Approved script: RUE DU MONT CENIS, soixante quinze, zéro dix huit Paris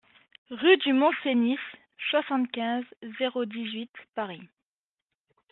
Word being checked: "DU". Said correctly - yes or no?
yes